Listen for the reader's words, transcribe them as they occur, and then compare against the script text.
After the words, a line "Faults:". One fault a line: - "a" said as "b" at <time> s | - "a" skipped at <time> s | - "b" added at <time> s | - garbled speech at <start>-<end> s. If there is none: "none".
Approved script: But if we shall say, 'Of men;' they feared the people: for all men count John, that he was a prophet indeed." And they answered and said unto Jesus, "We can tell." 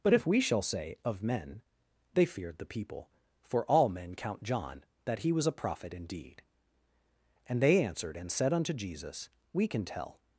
But if we shall say, 'Of men;' they feared the people: for all men count John, that he was a prophet indeed." And they answered and said unto Jesus, "We can tell."
Faults:
none